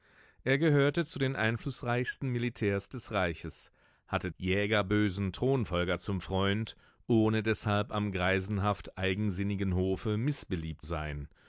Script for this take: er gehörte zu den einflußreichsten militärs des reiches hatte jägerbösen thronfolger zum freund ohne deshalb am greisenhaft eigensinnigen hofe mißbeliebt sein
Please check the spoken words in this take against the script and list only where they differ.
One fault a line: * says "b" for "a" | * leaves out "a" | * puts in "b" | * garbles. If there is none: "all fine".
all fine